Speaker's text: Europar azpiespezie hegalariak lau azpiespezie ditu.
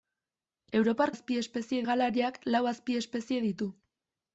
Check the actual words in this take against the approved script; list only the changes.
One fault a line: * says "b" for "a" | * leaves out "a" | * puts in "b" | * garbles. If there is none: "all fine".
all fine